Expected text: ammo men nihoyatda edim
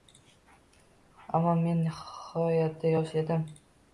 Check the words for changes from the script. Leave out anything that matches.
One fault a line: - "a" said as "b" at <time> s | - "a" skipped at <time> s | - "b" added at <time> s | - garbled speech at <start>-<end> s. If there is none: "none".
- "yosh" added at 3.0 s